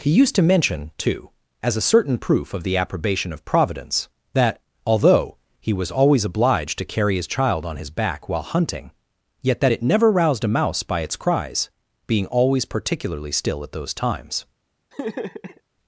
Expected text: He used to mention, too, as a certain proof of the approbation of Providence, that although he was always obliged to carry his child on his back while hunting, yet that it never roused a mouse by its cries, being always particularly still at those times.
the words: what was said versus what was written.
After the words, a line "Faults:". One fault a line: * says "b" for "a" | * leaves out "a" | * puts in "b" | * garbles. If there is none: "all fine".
He used to mention, too, as a certain proof of the approbation of Providence, that although he was always obliged to carry his child on his back while hunting, yet that it never roused a mouse by its cries, being always particularly still at those times.
Faults:
all fine